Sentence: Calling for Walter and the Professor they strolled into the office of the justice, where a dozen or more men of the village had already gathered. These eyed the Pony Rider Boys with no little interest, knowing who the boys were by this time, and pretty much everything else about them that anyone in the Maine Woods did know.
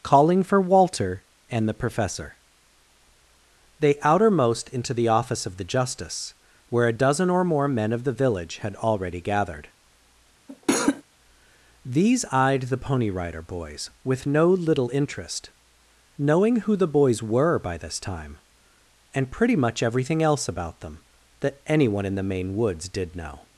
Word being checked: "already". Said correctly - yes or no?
yes